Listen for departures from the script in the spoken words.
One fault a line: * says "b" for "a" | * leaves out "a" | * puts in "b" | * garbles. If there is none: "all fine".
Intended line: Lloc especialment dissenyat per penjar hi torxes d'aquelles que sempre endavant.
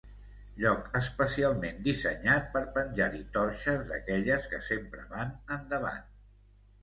* puts in "van"